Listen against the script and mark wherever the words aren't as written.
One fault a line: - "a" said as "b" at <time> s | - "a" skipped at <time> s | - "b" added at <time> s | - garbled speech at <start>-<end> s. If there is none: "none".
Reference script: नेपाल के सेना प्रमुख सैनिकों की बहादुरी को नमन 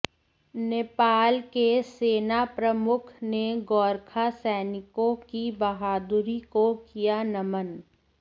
- "ने गोरखा" added at 3.2 s
- "किया" added at 6.9 s